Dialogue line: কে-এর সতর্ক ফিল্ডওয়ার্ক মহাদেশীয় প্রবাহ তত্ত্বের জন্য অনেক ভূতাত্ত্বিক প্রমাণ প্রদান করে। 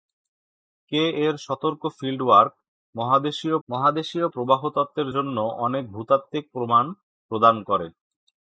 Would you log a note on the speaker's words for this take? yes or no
yes